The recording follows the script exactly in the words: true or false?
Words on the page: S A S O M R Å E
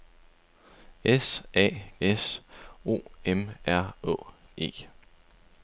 true